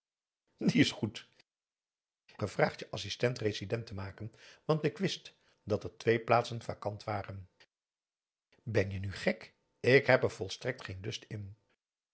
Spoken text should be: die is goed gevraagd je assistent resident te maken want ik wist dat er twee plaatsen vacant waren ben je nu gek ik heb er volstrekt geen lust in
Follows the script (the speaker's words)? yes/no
yes